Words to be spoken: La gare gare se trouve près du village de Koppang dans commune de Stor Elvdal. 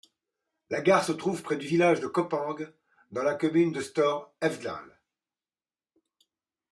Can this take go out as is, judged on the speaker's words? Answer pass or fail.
fail